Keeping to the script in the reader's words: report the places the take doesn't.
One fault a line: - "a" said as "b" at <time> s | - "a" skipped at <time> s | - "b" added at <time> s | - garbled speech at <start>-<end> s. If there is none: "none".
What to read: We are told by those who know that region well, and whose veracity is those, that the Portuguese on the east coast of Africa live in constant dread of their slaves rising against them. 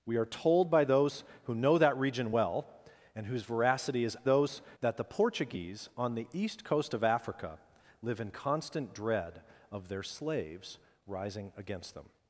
none